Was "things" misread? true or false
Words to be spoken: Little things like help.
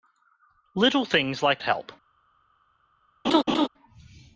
false